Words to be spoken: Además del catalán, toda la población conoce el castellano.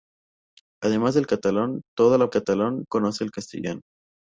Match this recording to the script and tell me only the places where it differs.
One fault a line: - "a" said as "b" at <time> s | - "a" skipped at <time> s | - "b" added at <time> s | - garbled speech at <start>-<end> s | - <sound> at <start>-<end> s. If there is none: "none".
- "población" said as "catalán" at 2.3 s